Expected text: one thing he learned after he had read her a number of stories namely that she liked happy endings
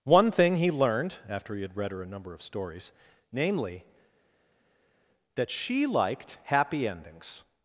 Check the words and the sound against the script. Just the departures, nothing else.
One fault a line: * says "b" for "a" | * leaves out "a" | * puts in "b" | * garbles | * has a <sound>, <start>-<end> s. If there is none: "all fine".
all fine